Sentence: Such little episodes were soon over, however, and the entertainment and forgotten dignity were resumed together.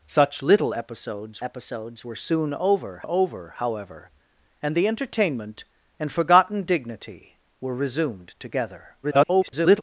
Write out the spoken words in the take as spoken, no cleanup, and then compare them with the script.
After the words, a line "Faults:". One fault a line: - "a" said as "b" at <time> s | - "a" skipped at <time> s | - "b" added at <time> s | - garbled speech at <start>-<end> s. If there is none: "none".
Such little episodes episodes were soon over over, however, and the entertainment and forgotten dignity were resumed together. [garbled]
Faults:
- "episodes" added at 1.4 s
- "over" added at 3.0 s
- garbled speech at 9.0-9.8 s